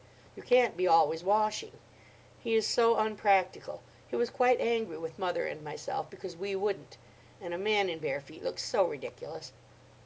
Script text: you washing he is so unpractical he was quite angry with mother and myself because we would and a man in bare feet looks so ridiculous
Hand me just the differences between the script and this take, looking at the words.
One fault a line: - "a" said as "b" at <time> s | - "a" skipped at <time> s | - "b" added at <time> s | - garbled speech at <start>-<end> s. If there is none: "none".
- "can't be always" added at 0.4 s
- "would" said as "wouldn't" at 6.5 s